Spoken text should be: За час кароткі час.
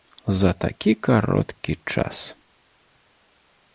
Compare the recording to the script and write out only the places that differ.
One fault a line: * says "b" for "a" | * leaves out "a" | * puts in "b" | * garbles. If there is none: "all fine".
* says "такі" for "час"